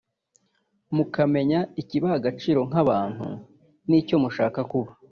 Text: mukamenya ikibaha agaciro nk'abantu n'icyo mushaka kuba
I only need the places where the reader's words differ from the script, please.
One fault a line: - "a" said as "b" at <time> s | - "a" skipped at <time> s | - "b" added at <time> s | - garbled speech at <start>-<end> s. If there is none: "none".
none